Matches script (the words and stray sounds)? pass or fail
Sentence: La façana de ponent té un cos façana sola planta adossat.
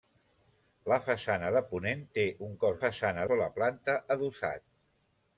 pass